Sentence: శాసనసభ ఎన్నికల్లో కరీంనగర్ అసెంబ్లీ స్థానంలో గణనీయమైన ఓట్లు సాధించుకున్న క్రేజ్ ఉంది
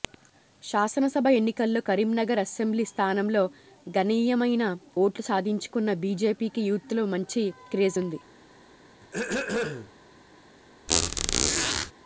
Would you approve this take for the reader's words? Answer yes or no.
no